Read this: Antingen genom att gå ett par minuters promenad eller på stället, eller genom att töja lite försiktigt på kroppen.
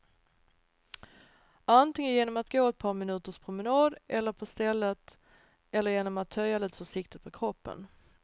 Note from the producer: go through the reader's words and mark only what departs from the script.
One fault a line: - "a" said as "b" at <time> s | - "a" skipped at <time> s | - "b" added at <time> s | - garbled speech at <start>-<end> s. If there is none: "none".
none